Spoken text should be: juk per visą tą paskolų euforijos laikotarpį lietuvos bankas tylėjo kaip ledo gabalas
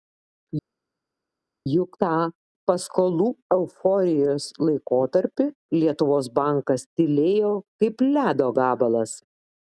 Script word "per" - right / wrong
wrong